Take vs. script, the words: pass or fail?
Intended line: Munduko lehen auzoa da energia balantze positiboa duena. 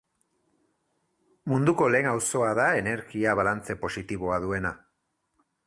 pass